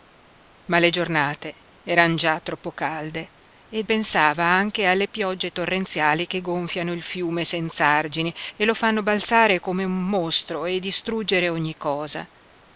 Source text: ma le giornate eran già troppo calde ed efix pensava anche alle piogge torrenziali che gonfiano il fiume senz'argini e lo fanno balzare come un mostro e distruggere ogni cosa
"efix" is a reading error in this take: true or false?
true